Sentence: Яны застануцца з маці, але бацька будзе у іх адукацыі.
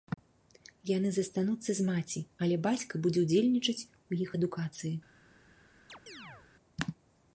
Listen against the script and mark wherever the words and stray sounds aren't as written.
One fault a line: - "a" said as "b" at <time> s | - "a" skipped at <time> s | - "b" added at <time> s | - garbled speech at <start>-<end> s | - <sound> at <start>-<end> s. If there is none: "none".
- "ўдзельнічаць" added at 3.3 s
- chirp at 5.9-6.5 s